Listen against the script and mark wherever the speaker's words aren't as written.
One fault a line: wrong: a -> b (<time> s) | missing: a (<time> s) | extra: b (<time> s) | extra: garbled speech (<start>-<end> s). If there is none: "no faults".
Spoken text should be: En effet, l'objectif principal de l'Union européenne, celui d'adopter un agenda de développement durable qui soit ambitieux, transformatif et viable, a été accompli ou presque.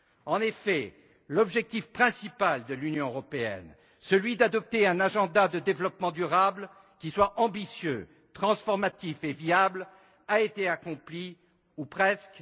no faults